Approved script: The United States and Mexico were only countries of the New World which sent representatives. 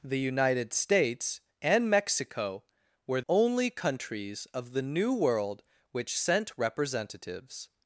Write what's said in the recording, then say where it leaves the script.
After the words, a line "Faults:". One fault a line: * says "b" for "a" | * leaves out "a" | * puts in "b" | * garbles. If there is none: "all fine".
The United States and Mexico were only countries of the New World which sent representatives.
Faults:
all fine